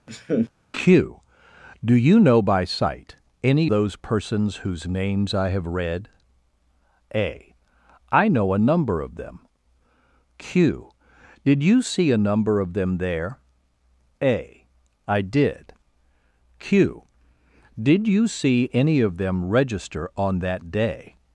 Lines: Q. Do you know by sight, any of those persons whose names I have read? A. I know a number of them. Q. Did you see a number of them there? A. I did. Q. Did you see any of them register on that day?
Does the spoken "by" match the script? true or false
true